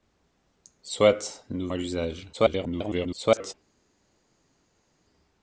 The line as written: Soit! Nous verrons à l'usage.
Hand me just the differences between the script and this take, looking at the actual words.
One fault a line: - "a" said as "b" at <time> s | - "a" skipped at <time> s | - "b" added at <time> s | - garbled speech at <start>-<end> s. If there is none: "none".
- "verrons" skipped at 1.7 s
- garbled speech at 2.3-3.5 s